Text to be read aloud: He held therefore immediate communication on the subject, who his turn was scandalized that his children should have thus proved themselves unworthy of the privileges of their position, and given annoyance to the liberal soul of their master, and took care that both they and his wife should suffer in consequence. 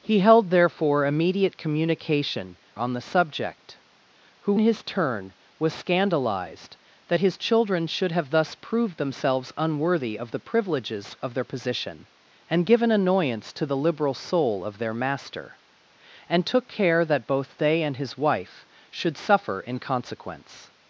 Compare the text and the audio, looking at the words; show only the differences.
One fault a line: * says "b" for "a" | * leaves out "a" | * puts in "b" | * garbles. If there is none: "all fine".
all fine